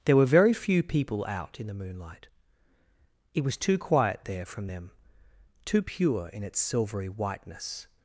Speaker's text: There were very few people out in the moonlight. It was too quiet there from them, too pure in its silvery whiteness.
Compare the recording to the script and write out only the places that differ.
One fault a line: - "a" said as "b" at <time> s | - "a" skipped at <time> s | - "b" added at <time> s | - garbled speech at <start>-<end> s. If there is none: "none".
none